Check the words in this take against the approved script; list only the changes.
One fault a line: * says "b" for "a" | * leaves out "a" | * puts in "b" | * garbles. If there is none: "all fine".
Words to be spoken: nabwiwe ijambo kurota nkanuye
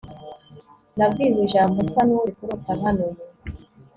* puts in "nsa n'uri"